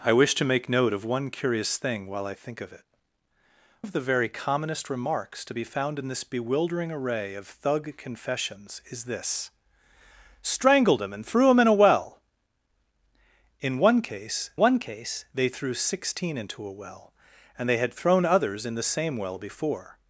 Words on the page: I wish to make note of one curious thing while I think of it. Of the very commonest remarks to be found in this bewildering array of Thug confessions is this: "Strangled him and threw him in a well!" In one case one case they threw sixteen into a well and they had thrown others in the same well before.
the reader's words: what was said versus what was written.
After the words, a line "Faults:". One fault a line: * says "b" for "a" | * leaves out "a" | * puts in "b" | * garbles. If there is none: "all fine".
I wish to make note of one curious thing while I think of it. Of the very commonest remarks to be found in this bewildering array of Thug confessions is this: "Strangled him and threw him in a well!" In one case one case they threw sixteen into a well and they had thrown others in the same well before.
Faults:
all fine